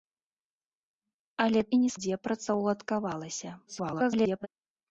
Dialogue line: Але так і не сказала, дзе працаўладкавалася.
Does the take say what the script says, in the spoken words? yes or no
no